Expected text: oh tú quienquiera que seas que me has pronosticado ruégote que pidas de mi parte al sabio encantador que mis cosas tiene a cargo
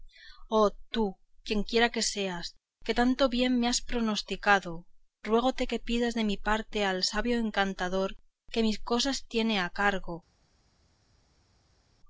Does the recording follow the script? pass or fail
fail